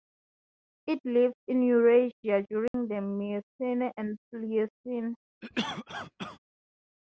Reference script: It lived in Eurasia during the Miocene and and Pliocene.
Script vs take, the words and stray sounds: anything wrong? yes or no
yes